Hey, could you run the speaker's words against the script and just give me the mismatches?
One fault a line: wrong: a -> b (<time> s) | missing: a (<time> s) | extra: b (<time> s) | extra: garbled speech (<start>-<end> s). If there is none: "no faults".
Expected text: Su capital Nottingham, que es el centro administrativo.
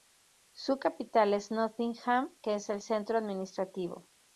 extra: es (1.4 s)